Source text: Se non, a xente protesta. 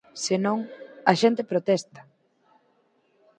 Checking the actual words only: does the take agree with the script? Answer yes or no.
yes